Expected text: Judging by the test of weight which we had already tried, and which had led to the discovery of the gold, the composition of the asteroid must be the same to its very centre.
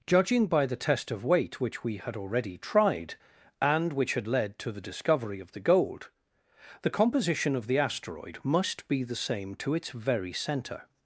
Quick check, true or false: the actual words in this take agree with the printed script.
true